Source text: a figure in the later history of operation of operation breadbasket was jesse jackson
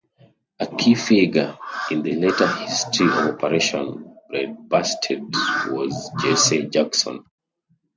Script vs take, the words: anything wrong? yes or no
yes